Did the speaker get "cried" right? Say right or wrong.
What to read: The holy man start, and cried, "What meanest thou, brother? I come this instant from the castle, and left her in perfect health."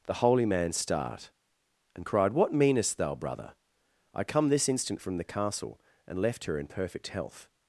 right